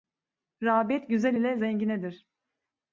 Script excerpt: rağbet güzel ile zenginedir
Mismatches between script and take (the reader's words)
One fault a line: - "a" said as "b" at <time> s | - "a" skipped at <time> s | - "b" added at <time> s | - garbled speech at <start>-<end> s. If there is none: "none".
none